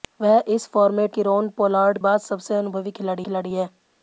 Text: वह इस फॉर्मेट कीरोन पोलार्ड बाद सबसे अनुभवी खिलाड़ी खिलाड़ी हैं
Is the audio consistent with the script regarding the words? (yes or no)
yes